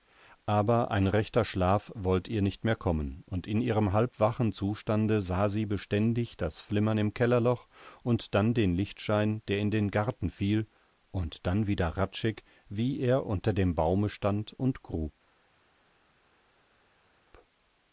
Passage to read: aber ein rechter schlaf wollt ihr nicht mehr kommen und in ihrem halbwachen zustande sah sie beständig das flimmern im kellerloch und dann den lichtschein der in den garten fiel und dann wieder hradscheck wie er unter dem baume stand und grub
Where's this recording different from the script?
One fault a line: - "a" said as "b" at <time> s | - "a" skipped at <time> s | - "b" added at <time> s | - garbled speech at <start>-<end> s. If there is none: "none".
none